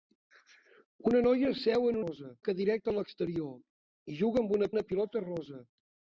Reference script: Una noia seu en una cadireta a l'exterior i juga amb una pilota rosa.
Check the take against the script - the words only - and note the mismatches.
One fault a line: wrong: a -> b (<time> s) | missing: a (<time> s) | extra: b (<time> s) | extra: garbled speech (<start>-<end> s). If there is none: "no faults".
wrong: una -> rosa (2.0 s)
extra: una (4.7 s)